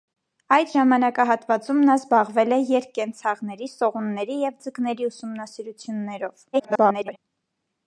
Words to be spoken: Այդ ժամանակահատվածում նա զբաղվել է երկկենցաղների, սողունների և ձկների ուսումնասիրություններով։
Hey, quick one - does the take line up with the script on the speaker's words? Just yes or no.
no